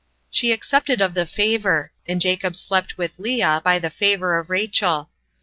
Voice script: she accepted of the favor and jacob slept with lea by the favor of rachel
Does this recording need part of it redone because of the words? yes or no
no